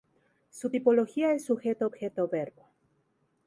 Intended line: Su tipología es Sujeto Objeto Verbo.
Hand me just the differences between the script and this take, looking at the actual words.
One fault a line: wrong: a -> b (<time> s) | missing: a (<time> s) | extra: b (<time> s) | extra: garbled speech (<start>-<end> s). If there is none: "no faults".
no faults